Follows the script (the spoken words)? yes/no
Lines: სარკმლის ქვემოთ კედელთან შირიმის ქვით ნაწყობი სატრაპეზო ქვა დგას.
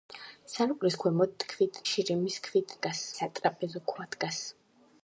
no